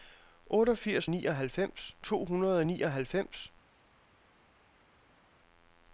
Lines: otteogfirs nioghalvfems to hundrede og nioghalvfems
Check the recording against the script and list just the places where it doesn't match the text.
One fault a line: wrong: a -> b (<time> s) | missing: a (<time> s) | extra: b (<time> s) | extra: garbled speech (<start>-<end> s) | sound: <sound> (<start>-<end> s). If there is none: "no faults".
no faults